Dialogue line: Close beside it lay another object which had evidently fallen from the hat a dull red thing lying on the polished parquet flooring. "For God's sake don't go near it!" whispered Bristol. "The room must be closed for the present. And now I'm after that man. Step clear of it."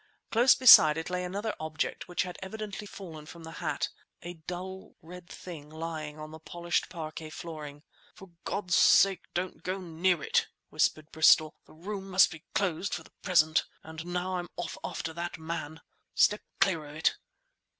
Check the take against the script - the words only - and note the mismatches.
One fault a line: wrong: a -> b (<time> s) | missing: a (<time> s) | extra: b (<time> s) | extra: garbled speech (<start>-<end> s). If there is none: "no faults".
extra: off (14.5 s)